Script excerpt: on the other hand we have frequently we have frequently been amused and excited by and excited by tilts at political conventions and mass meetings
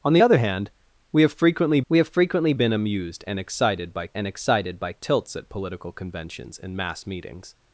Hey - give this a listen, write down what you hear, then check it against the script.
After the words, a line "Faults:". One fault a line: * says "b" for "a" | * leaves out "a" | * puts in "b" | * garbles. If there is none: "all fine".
on the other hand we have frequently we have frequently been amused and excited by and excited by tilts at political conventions and mass meetings
Faults:
all fine